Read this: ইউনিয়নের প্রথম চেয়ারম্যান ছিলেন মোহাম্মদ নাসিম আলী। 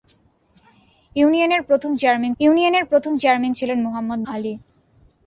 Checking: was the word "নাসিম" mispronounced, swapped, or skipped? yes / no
yes